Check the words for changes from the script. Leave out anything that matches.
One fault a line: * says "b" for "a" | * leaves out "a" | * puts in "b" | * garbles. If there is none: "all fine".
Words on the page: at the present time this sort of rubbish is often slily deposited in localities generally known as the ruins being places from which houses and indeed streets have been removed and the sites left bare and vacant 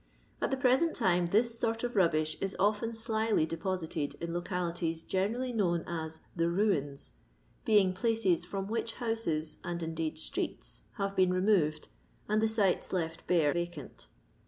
* leaves out "and"